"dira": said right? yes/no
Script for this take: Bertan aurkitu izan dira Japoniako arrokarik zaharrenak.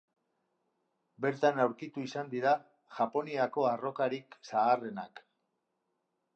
yes